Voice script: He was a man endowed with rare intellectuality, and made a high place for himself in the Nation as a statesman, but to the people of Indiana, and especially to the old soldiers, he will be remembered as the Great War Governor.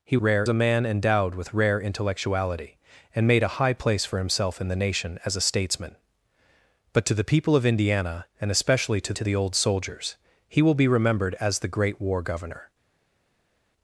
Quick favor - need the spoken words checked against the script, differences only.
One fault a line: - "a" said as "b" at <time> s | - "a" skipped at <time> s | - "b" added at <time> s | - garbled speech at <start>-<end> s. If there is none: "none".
- "was" said as "rare" at 0.2 s
- "to" added at 9.1 s